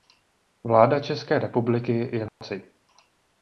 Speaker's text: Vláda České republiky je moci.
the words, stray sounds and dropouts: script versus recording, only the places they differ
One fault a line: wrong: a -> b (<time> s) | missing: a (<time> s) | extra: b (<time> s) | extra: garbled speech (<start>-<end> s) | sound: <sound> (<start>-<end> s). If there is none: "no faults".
sound: dropout (2.3-2.4 s)